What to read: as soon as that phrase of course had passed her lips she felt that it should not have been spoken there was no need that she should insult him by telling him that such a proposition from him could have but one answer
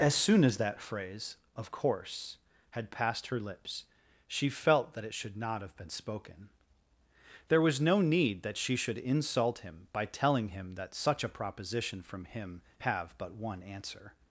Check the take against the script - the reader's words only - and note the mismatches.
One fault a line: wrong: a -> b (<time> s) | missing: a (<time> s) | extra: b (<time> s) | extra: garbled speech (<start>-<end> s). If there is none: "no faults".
missing: could (12.6 s)